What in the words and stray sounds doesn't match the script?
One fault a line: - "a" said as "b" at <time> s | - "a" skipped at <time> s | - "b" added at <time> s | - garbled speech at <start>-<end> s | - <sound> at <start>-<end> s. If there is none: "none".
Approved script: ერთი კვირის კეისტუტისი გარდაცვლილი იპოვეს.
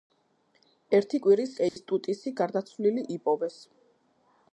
- dropout at 1.7-1.8 s